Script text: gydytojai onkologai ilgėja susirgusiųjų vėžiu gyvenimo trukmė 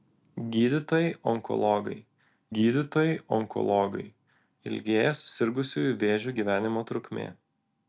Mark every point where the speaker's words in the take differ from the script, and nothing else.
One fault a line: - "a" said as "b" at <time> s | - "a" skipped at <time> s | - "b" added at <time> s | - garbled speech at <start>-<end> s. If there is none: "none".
- "gydytojai onkologai" added at 2.6 s